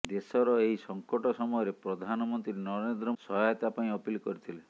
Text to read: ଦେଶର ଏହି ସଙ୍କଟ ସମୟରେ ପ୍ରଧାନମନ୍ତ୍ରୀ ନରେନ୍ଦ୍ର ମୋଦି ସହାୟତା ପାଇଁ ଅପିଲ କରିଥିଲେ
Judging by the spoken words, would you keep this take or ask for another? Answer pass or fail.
fail